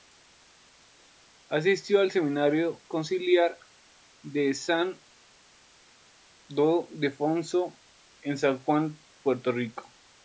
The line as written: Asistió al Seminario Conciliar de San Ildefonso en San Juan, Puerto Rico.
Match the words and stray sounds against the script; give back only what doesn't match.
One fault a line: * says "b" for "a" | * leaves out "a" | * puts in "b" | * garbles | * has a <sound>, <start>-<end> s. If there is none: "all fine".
all fine